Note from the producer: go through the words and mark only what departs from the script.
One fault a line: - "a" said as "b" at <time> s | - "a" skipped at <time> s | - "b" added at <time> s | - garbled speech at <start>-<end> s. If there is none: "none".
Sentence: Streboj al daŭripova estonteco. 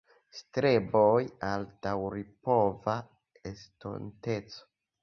none